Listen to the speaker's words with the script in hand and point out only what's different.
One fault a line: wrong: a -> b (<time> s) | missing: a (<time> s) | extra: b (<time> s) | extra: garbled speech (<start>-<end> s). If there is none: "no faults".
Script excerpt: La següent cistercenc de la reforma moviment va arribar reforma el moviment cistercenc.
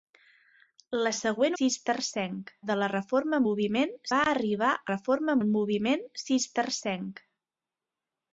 no faults